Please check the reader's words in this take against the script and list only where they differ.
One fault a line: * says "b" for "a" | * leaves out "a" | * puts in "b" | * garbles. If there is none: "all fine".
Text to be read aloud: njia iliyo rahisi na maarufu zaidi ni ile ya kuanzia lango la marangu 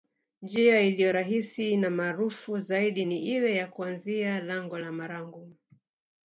all fine